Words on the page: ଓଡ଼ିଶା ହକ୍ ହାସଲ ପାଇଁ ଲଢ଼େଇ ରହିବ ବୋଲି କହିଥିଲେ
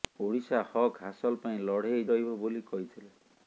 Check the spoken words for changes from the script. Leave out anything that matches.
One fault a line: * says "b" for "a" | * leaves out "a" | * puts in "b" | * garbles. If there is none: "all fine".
all fine